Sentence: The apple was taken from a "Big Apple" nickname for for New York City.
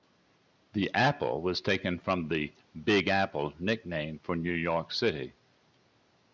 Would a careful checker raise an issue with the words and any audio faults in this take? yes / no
yes